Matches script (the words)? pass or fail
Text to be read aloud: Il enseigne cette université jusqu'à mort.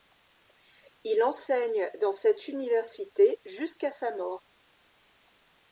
fail